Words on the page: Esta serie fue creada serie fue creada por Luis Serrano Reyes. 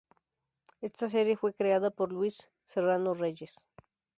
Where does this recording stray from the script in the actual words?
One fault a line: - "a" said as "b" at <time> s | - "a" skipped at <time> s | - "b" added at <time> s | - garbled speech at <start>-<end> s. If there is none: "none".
- "serie fue creada" skipped at 1.9 s